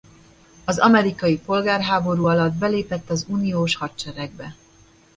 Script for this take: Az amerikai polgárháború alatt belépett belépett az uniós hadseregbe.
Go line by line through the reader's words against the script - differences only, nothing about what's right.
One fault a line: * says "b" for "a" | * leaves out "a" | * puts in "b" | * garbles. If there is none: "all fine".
* leaves out "belépett"